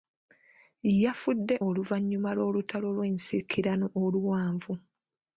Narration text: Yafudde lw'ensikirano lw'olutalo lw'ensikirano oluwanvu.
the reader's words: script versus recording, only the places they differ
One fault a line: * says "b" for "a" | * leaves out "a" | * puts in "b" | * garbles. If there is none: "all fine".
* says "oluvannyuma" for "lw'ensikirano"